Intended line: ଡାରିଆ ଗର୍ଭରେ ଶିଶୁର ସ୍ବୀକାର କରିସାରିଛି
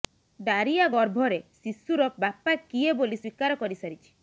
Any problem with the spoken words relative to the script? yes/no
yes